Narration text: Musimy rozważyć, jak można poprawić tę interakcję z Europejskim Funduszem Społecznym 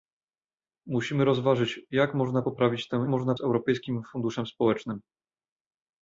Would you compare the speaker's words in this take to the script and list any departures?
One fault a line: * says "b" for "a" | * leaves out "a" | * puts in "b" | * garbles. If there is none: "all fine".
* says "można" for "interakcję"